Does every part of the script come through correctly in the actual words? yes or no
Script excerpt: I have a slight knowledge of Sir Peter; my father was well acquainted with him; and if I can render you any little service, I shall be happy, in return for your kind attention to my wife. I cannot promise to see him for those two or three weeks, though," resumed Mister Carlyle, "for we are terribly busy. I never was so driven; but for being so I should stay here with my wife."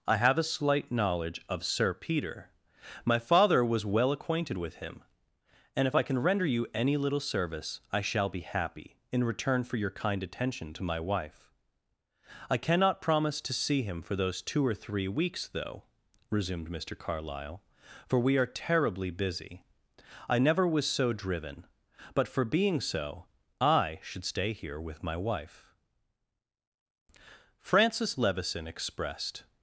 no